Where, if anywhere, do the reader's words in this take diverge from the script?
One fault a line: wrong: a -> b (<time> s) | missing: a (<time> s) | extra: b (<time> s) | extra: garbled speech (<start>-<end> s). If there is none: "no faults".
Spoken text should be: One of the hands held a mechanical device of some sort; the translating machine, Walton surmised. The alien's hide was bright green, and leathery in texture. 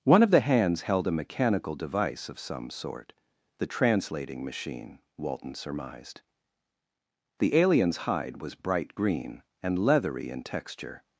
no faults